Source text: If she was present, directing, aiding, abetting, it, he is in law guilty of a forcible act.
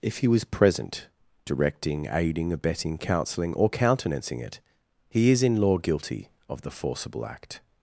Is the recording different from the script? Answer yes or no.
yes